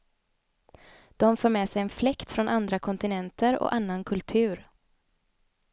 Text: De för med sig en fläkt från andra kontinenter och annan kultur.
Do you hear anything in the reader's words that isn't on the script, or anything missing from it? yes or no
no